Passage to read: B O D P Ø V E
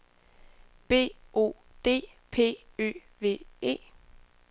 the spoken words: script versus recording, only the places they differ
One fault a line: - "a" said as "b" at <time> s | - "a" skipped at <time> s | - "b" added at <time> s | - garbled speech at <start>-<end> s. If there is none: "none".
none